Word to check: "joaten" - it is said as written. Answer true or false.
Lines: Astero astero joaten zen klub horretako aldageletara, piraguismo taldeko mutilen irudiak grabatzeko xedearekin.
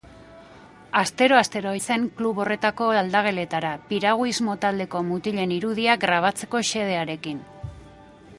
false